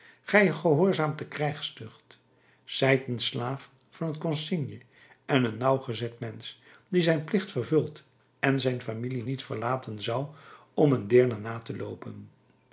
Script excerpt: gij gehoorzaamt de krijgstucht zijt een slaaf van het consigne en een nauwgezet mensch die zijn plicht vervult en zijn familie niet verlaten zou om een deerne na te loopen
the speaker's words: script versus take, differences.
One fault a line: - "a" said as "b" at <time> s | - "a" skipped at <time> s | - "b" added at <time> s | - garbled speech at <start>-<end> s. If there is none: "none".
none